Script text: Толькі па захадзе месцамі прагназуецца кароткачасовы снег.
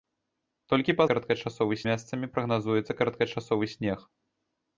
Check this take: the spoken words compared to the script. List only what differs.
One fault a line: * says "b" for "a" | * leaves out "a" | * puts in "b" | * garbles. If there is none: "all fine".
* says "кароткачасовы" for "захадзе"